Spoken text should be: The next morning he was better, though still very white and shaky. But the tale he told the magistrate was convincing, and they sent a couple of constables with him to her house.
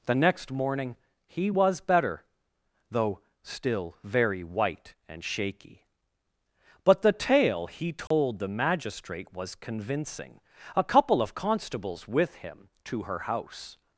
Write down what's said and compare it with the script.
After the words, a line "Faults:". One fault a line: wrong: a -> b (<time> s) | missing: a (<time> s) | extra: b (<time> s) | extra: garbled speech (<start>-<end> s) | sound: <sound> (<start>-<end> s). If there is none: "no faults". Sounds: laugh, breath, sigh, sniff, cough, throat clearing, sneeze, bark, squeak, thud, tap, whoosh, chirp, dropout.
The next morning he was better, though still very white and shaky. But the tale he told the magistrate was convincing, a couple of constables with him to her house.
Faults:
sound: dropout (8.1-8.1 s)
missing: and they sent (10.4 s)